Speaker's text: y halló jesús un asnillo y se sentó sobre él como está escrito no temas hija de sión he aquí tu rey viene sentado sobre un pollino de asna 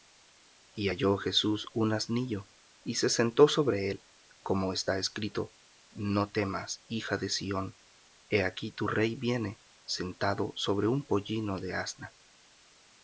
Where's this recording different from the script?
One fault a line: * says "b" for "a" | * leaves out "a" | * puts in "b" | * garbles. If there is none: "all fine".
all fine